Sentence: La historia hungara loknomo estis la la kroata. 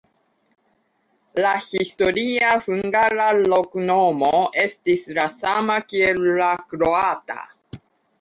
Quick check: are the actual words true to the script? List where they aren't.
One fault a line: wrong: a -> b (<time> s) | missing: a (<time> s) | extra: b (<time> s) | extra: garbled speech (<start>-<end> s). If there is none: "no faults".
extra: sama kiel (5.4 s)